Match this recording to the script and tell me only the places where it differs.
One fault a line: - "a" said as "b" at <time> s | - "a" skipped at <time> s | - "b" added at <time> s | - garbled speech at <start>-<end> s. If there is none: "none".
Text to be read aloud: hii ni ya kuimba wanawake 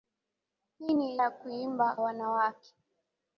none